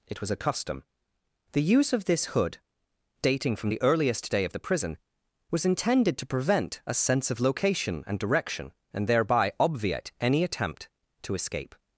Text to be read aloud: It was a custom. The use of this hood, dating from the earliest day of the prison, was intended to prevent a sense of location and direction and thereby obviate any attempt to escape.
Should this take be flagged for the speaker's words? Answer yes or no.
no